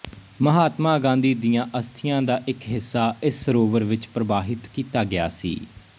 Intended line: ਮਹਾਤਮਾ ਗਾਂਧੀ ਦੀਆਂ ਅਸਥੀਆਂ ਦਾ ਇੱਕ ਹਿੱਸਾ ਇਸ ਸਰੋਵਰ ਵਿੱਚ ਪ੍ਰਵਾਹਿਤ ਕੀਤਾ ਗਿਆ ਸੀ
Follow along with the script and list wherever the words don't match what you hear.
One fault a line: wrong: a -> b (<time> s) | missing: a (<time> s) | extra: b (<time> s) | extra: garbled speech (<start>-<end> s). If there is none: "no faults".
no faults